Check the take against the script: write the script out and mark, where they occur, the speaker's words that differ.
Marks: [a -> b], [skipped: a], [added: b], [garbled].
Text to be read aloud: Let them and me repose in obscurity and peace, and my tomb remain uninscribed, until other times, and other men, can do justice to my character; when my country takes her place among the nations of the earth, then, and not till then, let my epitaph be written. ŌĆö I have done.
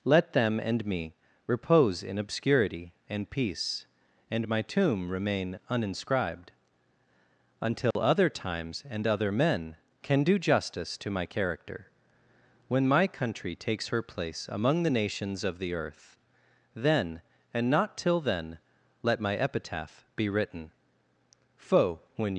Let them and me repose in obscurity and peace, and my tomb remain uninscribed, until other times, and other men, can do justice to my character; when my country takes her place among the nations of the earth, then, and not till then, let my epitaph be written. [ŌĆö I have done. -> Foe when]